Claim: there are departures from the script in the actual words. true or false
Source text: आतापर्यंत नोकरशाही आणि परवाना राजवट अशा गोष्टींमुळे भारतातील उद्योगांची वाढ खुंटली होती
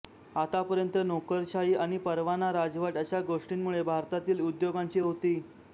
true